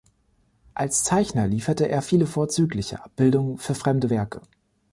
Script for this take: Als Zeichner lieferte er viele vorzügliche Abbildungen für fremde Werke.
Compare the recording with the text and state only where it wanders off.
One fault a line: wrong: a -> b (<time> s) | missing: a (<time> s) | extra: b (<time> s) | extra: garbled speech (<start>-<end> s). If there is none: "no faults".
no faults